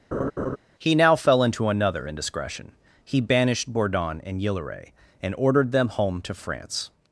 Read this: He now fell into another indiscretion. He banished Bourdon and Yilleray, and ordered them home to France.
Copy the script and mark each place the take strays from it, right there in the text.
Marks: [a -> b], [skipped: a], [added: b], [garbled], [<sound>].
[laugh] He now fell into another indiscretion. He banished Bourdon and Yilleray, and ordered them home to France.